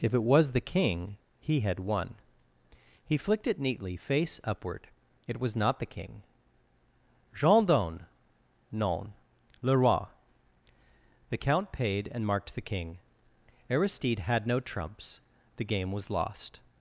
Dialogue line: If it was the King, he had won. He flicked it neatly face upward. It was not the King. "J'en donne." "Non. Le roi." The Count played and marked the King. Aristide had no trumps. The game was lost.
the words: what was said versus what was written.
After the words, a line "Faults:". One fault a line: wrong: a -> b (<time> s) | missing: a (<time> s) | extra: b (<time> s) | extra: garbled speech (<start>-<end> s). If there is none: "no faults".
If it was the King, he had won. He flicked it neatly face upward. It was not the King. "J'en donne." "Non. Le roi." The Count paid and marked the King. Aristide had no trumps. The game was lost.
Faults:
wrong: played -> paid (11.7 s)